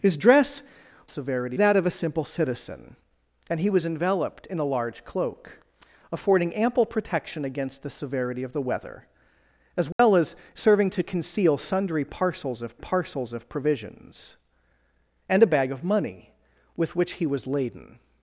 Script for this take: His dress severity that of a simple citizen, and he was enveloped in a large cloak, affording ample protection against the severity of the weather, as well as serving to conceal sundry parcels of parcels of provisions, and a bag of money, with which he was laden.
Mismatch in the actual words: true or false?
false